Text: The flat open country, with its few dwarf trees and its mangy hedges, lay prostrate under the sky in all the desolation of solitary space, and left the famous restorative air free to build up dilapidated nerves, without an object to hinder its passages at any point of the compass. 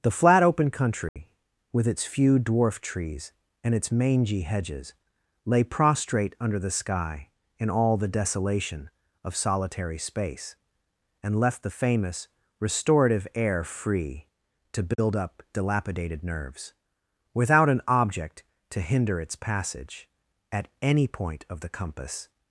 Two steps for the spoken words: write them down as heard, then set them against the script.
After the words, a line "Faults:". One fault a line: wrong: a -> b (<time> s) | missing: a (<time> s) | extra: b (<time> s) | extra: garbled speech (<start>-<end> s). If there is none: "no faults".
The flat open country, with its few dwarf trees and its mangy hedges, lay prostrate under the sky in all the desolation of solitary space, and left the famous restorative air free to build up dilapidated nerves, without an object to hinder its passage at any point of the compass.
Faults:
wrong: passages -> passage (19.4 s)